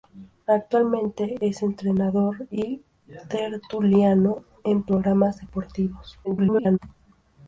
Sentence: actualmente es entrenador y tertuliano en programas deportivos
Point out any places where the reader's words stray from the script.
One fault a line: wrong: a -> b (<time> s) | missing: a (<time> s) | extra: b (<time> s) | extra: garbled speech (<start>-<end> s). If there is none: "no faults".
extra: garbled speech (6.2-6.8 s)